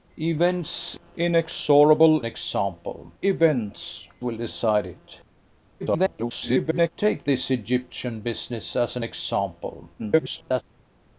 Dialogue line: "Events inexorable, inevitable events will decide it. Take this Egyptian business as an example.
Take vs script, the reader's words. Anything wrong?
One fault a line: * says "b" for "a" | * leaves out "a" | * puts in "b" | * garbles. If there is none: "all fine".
* says "example" for "inevitable"
* garbles
* garbles